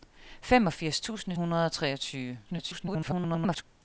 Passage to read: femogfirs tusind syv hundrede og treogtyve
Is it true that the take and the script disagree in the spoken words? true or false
true